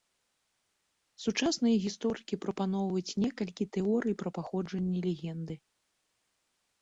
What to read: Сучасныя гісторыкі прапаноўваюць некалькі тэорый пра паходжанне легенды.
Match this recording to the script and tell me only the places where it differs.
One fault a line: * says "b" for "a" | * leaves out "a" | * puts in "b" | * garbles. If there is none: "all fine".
all fine